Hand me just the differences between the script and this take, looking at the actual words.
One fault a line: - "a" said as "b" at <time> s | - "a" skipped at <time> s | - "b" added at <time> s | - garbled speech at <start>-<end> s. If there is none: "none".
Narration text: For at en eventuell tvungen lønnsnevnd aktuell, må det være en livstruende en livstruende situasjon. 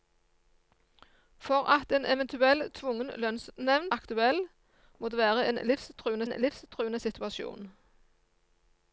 none